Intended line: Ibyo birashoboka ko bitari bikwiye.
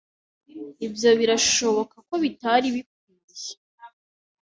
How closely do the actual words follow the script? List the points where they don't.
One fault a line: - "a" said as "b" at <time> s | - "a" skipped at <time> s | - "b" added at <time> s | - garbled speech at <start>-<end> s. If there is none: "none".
none